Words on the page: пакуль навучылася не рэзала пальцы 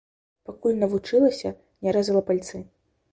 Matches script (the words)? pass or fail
pass